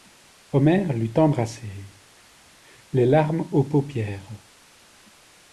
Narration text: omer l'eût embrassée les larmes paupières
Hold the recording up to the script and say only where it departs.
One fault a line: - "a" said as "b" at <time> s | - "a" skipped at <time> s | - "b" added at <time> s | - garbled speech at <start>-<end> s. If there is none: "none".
- "aux" added at 3.5 s